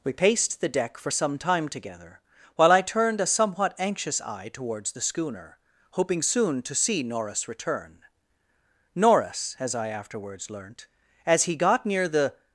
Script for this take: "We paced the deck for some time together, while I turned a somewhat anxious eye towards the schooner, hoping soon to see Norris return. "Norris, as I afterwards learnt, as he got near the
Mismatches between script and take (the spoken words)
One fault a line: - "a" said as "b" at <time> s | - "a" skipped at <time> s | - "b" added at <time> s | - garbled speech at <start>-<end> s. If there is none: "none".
none